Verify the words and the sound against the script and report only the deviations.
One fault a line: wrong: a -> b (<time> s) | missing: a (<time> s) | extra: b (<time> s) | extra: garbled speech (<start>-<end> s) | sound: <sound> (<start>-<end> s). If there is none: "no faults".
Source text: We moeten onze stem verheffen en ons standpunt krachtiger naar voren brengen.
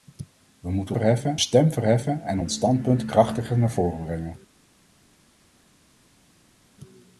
wrong: onze -> verheffen (0.9 s)